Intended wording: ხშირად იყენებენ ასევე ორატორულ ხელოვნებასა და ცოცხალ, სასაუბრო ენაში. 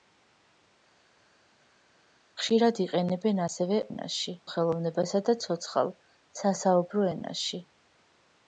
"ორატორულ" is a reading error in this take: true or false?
true